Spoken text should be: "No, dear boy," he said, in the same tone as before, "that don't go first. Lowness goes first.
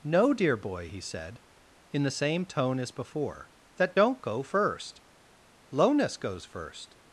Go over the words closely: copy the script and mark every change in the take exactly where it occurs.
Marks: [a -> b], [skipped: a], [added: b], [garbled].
"No, dear boy," he said, in the same tone as before, "that don't go first. Lowness goes first.